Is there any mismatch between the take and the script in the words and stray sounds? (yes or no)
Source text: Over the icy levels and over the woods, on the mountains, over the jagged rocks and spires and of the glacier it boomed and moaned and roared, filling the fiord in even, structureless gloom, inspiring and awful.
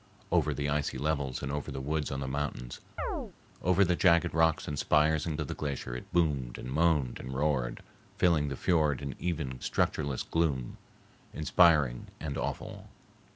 yes